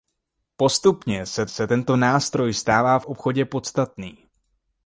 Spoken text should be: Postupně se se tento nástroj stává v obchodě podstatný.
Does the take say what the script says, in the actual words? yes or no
yes